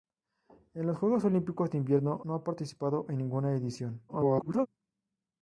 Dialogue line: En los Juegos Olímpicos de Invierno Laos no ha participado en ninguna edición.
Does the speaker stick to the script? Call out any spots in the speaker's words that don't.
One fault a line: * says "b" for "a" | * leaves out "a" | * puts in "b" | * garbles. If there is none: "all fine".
* leaves out "Laos"
* garbles